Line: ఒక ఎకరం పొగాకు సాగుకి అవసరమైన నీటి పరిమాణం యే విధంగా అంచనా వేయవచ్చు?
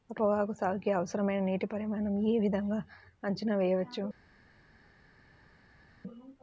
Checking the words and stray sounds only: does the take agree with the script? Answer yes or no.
no